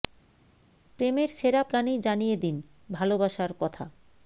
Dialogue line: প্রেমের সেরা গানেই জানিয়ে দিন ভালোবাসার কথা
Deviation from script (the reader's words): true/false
false